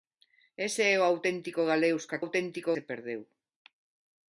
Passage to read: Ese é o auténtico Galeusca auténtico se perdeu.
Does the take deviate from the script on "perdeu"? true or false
false